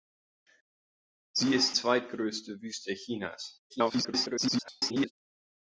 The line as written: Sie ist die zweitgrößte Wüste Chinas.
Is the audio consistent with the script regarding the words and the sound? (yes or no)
no